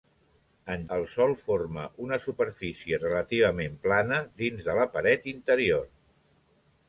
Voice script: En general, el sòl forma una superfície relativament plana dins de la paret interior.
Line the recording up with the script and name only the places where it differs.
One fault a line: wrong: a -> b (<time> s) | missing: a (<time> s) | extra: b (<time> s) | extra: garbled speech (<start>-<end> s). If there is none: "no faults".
missing: general (0.8 s)